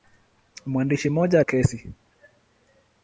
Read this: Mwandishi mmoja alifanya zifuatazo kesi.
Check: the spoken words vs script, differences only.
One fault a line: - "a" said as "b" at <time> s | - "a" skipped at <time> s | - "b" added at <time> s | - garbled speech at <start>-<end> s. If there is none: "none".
- "alifanya zifuatazo" skipped at 1.4 s